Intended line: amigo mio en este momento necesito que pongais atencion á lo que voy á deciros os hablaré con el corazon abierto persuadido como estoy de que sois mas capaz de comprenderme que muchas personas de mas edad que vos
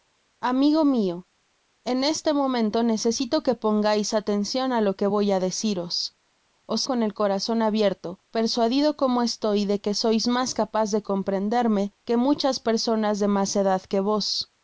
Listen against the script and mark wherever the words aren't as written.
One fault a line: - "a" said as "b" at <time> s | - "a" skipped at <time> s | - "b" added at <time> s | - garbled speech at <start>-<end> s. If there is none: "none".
- "hablaré" skipped at 6.9 s